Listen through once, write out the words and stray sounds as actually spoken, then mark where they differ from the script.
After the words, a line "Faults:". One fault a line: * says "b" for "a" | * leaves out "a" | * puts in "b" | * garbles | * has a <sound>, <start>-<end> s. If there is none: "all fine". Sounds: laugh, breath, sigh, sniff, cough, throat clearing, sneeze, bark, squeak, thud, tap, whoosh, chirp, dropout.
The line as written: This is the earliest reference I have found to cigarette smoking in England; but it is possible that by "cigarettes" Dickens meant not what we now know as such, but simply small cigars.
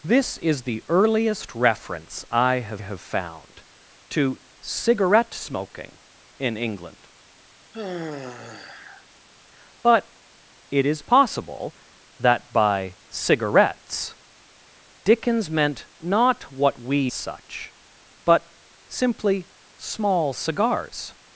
This is the earliest reference I have have found to cigarette smoking in England; but it is possible that by "cigarettes" Dickens meant not what we such, but simply small cigars.
Faults:
* puts in "have"
* has a sigh, 7.7-9.1 s
* leaves out "now know as"